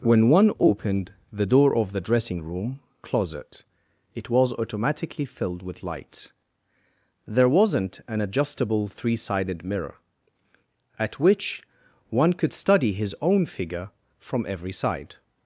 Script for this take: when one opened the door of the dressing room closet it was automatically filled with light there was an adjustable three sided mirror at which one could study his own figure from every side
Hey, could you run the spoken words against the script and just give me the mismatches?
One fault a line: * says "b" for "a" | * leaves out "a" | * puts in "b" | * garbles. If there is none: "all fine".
* says "wasn't" for "was"